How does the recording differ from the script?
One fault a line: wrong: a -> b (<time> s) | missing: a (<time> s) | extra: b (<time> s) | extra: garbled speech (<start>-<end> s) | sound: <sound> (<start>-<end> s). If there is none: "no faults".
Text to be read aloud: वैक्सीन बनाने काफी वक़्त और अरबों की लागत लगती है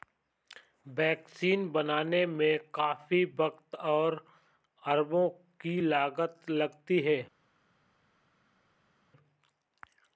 extra: में (2.2 s)